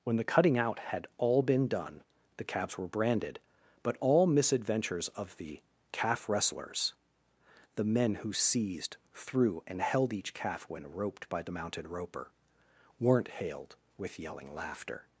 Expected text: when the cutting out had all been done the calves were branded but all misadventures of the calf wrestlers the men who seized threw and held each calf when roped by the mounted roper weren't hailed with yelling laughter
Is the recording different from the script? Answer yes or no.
no